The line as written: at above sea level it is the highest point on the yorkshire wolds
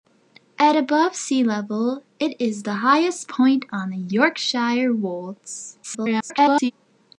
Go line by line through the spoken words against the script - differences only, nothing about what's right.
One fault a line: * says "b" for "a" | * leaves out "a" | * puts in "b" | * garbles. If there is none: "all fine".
* garbles